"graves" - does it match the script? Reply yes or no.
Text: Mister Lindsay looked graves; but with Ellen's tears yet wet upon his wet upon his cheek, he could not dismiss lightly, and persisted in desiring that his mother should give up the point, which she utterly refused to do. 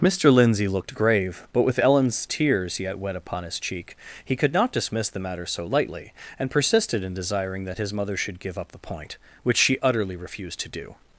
no